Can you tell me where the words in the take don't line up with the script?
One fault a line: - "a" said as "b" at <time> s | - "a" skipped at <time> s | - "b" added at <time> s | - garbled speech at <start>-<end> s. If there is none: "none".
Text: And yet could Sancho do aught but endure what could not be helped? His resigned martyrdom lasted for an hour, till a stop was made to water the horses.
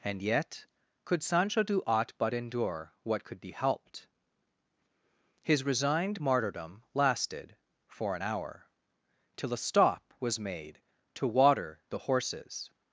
- "not" skipped at 3.4 s